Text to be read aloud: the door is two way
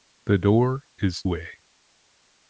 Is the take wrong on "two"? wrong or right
wrong